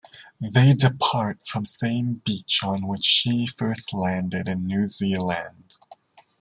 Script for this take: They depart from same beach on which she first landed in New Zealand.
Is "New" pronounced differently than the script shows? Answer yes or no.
no